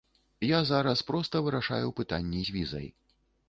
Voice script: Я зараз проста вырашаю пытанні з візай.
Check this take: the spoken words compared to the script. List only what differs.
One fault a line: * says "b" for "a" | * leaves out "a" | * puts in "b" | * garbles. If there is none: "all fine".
all fine